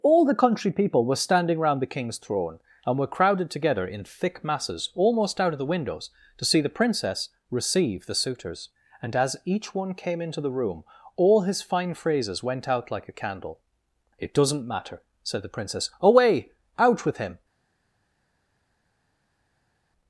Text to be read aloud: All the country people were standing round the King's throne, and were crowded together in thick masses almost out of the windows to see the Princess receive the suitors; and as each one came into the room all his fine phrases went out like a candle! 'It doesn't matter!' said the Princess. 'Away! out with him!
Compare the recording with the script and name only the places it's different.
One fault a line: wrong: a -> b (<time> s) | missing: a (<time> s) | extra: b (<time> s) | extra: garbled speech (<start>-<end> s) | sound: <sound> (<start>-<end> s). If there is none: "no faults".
no faults